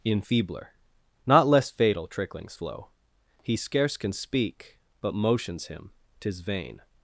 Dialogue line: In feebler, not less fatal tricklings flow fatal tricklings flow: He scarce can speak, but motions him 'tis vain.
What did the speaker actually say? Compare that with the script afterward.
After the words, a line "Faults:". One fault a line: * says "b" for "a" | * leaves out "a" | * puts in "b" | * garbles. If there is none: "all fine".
In feebler, not less fatal tricklings flow: He scarce can speak, but motions him 'tis vain.
Faults:
* leaves out "fatal tricklings flow"